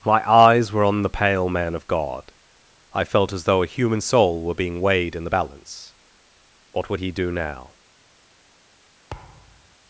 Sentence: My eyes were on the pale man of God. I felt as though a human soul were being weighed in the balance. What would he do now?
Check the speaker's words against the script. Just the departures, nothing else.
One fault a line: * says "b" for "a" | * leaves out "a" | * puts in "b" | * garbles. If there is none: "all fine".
all fine